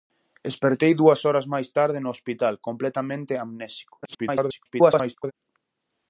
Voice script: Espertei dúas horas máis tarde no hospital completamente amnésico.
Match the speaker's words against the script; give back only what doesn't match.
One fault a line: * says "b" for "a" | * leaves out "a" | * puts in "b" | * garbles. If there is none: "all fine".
* garbles